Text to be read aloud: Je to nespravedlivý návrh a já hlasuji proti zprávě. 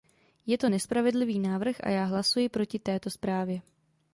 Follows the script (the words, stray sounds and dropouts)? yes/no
no